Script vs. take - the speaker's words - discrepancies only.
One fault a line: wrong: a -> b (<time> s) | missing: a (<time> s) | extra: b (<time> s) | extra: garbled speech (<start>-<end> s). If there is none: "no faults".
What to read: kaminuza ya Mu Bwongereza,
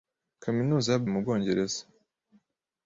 no faults